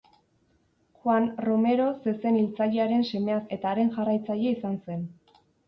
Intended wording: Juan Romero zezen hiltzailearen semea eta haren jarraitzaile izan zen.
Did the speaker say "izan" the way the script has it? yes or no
yes